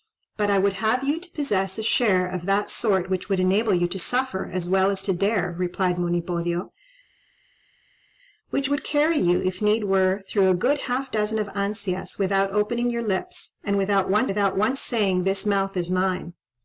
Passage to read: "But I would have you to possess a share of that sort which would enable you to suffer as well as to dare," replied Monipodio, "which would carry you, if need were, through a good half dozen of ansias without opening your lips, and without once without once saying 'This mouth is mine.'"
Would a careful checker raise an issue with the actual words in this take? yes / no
no